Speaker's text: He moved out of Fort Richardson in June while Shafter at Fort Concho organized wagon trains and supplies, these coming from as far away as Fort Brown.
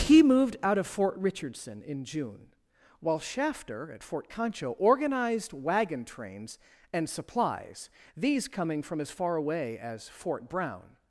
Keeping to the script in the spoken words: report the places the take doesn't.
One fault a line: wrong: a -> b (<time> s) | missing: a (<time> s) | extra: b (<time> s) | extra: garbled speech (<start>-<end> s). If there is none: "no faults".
no faults